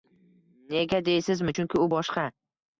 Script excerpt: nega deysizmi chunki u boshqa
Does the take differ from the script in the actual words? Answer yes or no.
no